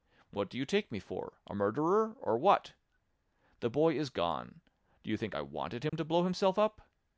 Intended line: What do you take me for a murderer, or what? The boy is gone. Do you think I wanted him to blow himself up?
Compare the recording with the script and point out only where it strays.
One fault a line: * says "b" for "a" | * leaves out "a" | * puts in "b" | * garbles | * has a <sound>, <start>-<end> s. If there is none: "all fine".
* has a dropout, 5.9-5.9 s